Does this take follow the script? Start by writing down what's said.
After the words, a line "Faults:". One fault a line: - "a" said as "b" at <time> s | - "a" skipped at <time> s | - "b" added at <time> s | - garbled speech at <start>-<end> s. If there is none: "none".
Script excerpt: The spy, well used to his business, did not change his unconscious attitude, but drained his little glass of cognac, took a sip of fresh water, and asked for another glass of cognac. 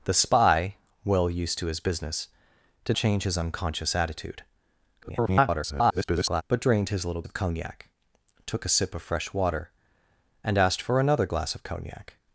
The spy, well used to his business, did change his unconscious attitude, [garbled] but drained his little of cognac, took a sip of fresh water, and asked for another glass of cognac.
Faults:
- "not" skipped at 3.0 s
- garbled speech at 5.0-6.4 s
- "glass" skipped at 7.2 s